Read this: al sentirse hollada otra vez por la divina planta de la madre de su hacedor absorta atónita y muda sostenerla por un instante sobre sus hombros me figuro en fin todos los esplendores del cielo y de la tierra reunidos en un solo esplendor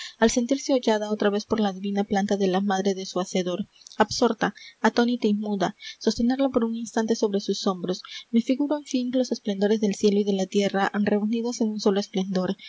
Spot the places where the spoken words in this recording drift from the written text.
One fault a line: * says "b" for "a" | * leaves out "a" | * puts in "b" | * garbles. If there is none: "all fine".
* leaves out "todos"